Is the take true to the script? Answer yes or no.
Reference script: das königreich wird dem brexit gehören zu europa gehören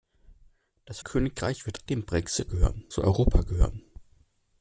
yes